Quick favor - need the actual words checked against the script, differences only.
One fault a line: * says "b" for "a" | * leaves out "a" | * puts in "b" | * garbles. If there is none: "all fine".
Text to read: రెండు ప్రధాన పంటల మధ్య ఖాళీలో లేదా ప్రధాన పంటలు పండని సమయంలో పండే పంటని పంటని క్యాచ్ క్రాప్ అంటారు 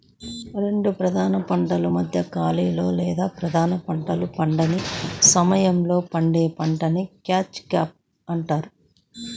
* leaves out "పంటని"